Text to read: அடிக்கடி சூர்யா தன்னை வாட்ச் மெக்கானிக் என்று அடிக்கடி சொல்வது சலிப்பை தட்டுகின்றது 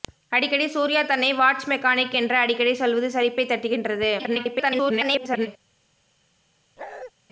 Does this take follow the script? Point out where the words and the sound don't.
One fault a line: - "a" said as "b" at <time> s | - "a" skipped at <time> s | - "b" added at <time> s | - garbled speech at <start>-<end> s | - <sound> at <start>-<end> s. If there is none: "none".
- garbled speech at 4.2-5.5 s
- bark at 6.8-7.1 s